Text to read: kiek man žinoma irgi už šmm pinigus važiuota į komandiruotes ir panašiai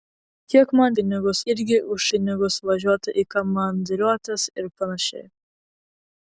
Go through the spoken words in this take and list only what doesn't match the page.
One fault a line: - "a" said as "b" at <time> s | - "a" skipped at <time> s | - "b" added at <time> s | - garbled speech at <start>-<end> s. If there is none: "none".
- "žinoma" said as "pinigus" at 1.0 s
- "šmm" skipped at 2.1 s